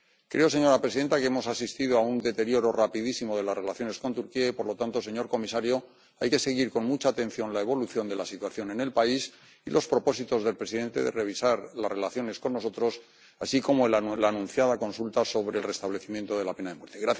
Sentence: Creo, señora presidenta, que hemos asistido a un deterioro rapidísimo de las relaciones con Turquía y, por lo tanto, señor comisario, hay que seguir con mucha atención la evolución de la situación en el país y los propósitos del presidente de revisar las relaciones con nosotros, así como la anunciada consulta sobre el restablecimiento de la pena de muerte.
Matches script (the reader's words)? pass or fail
pass